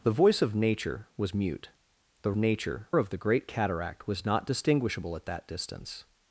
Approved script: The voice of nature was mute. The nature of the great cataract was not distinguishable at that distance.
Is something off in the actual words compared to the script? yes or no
no